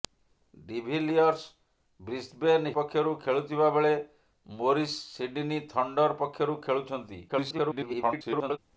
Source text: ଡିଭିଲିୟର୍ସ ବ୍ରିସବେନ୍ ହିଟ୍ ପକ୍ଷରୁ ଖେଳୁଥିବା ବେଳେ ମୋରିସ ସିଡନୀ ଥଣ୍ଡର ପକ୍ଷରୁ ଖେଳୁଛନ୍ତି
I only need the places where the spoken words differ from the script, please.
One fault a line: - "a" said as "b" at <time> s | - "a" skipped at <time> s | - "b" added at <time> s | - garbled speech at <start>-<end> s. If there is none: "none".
- "ହିଟ୍" skipped at 2.6 s
- garbled speech at 7.3-8.6 s